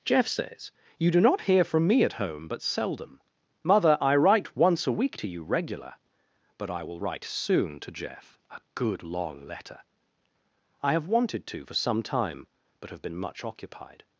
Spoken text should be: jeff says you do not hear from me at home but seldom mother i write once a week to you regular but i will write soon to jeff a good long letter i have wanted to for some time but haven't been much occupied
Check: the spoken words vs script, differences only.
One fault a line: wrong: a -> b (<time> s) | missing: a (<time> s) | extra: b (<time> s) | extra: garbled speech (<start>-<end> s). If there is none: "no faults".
wrong: haven't -> have (12.9 s)